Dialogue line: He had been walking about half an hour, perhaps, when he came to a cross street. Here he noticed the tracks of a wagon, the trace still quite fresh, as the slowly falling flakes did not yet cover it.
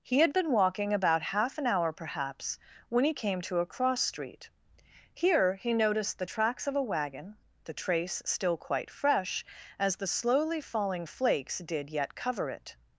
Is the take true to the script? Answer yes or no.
no